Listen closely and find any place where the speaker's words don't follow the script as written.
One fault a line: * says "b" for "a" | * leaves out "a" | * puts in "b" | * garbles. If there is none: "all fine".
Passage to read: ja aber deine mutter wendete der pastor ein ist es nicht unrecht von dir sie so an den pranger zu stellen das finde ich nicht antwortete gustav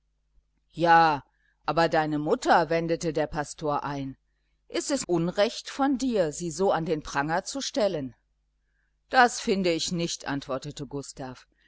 * leaves out "nicht"